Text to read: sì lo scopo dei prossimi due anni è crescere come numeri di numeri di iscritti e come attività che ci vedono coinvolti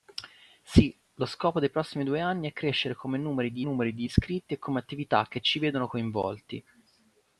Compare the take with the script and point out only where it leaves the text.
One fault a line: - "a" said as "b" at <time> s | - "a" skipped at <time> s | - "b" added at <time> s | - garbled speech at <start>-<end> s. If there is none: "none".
none